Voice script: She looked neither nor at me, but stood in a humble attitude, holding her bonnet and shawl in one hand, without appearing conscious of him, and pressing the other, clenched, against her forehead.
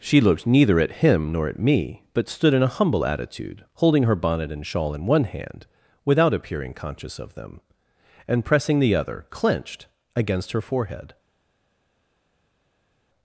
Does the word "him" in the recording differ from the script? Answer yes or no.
yes